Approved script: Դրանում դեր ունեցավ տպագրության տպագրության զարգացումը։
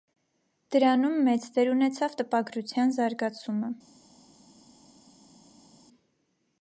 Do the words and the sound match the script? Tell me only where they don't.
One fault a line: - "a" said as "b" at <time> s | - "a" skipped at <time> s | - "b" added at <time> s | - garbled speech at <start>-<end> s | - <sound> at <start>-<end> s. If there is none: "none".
- "մեծ" added at 1.3 s
- "տպագրության" skipped at 2.9 s